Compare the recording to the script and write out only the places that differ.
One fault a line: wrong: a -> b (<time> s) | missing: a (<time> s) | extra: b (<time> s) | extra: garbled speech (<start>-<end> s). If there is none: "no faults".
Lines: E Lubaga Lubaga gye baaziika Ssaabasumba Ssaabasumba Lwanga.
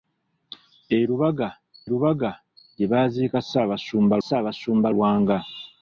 no faults